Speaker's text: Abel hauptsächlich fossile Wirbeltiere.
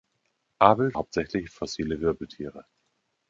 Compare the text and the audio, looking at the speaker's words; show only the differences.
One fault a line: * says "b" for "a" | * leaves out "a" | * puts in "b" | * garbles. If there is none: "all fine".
all fine